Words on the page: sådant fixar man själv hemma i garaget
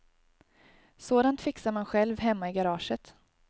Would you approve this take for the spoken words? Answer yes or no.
yes